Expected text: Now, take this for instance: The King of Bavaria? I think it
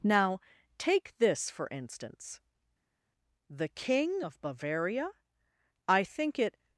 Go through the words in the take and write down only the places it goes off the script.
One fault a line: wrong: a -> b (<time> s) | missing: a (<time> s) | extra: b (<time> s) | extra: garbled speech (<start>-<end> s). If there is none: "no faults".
no faults